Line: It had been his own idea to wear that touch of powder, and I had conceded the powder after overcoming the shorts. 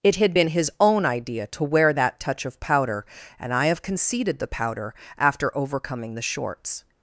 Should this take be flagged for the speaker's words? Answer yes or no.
yes